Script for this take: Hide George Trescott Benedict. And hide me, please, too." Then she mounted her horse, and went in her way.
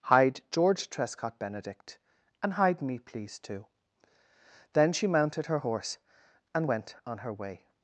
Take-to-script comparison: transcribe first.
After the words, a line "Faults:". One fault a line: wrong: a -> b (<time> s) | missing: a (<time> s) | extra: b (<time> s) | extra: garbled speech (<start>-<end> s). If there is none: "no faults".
Hide George Trescott Benedict. And hide me, please, too." Then she mounted her horse, and went on her way.
Faults:
wrong: in -> on (7.0 s)